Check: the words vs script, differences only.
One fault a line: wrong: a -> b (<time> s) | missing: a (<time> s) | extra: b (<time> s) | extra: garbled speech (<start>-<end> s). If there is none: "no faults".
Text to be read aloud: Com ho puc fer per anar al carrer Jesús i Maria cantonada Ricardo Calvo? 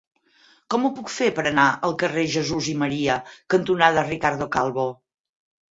no faults